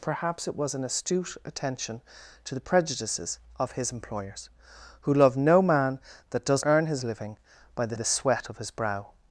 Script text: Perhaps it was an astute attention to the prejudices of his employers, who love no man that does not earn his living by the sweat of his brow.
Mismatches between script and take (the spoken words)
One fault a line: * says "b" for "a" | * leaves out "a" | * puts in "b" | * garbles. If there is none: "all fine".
* leaves out "not"
* puts in "the"